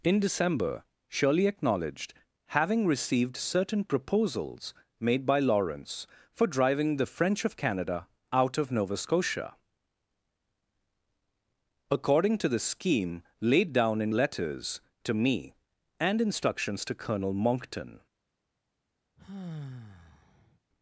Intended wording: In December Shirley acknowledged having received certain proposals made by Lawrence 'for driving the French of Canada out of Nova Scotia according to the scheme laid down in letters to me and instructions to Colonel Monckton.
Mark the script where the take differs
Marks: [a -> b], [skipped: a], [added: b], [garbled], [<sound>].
In December Shirley acknowledged having received certain proposals made by Lawrence 'for driving the French of Canada out of Nova Scotia according to the scheme laid down in letters to me and instructions to Colonel Monckton. [sigh]